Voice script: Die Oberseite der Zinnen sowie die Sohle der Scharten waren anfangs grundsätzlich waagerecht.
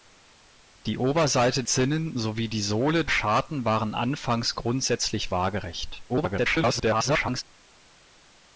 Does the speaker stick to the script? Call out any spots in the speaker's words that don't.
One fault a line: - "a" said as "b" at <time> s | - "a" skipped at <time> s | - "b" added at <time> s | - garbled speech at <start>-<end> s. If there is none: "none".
- "der" skipped at 1.6 s
- "der" skipped at 3.1 s
- garbled speech at 6.1-7.4 s